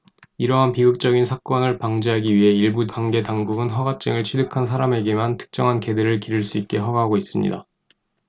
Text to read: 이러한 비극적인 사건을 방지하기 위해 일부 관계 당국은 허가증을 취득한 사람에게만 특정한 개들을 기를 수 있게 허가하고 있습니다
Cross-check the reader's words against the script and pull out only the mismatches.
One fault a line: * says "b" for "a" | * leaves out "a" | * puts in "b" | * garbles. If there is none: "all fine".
all fine